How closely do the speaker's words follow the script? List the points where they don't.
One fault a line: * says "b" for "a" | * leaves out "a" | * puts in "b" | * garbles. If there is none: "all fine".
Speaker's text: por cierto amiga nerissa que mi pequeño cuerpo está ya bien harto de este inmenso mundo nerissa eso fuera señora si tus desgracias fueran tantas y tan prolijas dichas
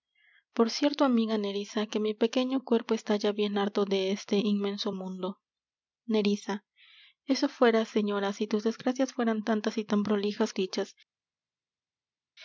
all fine